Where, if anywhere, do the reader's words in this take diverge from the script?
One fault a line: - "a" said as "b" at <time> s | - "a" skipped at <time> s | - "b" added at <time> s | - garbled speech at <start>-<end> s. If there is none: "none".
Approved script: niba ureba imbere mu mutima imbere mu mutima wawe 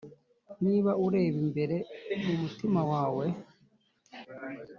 - "imbere mu mutima" skipped at 2.8 s